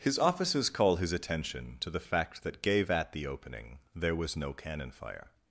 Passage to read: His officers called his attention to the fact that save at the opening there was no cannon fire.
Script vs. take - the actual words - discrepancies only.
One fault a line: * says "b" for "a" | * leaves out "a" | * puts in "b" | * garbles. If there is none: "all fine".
* says "call" for "called"
* says "gave" for "save"